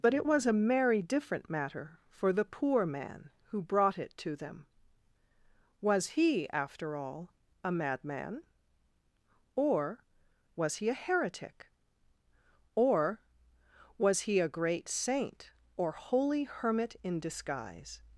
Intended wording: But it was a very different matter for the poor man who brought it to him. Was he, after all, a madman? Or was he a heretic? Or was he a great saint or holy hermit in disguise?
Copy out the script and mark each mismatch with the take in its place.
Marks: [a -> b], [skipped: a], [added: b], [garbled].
But it was a [very -> merry] different matter for the poor man who brought it to [him. -> them] Was he, after all, a madman? Or was he a heretic? Or was he a great saint or holy hermit in disguise?